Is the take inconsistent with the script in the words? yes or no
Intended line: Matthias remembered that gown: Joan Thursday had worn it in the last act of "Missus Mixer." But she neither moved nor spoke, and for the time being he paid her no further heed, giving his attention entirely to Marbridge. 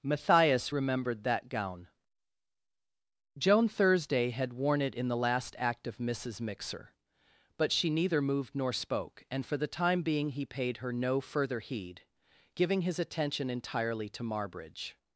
no